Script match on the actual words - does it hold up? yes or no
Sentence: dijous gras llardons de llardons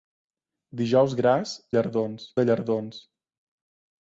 yes